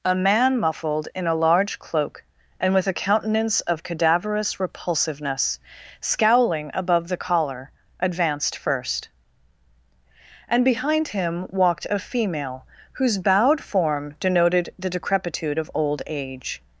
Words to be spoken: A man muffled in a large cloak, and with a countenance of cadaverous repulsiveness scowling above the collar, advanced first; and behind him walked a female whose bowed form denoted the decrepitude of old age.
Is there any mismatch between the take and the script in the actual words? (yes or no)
no